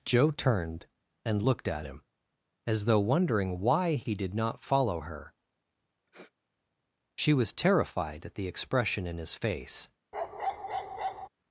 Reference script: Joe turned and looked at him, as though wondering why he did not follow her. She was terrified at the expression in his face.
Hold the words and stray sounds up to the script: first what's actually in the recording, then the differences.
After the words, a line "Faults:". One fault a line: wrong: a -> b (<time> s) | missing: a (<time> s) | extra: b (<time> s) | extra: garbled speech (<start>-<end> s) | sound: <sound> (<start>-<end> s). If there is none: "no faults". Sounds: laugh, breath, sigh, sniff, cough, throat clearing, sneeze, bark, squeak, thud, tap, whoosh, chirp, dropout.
Joe turned and looked at him, as though wondering why he did not follow her. She was terrified at the expression in his face.
Faults:
sound: sniff (6.1-6.3 s)
sound: bark (10.1-11.3 s)